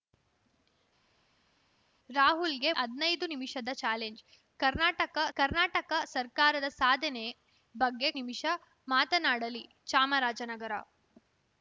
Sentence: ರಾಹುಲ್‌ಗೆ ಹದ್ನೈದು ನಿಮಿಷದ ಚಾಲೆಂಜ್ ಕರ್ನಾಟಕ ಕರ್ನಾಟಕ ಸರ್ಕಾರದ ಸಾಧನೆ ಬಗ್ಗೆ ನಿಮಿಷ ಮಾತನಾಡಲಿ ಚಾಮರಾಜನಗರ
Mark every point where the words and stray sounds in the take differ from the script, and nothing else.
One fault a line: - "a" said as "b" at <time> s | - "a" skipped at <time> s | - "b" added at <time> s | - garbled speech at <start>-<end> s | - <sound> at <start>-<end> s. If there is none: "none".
none